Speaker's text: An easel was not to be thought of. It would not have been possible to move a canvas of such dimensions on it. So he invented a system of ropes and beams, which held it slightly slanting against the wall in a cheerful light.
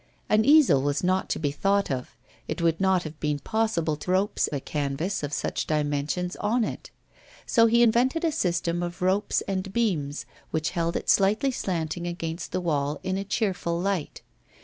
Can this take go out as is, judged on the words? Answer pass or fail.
fail